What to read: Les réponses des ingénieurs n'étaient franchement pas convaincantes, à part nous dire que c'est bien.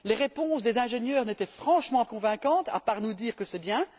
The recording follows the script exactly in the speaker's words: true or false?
false